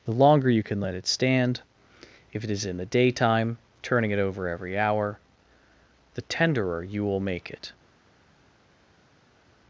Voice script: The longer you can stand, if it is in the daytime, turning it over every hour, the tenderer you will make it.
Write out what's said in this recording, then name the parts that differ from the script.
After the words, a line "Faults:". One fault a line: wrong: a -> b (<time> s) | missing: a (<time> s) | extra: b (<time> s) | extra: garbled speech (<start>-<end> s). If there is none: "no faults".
The longer you can let it stand, if it is in the daytime, turning it over every hour, the tenderer you will make it.
Faults:
extra: let it (0.8 s)